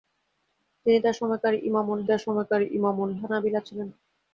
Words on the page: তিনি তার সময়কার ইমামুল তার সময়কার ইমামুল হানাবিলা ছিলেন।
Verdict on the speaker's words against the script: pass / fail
pass